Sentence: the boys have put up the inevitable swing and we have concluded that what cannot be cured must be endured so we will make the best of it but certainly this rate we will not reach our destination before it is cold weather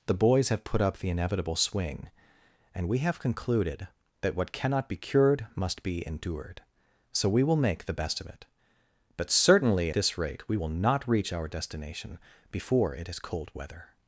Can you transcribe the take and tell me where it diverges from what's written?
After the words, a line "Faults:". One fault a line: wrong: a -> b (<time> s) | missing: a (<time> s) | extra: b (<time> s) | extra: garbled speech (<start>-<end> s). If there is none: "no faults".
the boys have put up the inevitable swing and we have concluded that what cannot be cured must be endured so we will make the best of it but certainly this rate we will not reach our destination before it is cold weather
Faults:
no faults